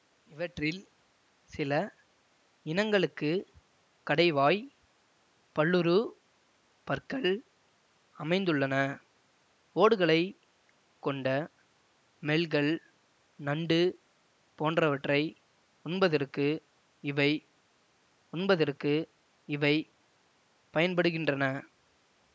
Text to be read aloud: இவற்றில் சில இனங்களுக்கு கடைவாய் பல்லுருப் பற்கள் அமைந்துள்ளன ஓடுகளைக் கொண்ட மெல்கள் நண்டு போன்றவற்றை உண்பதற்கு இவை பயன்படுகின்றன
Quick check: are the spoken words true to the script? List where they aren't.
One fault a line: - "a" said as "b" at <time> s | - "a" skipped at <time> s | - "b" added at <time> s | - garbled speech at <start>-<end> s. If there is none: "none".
- "உண்பதற்கு இவை" added at 18.3 s